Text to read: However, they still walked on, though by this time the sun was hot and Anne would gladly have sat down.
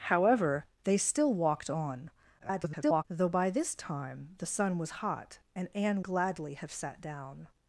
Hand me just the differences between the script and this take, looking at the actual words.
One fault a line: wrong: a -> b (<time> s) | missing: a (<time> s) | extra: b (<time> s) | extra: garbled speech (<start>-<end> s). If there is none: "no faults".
extra: garbled speech (2.4-3.0 s)
missing: would (6.0 s)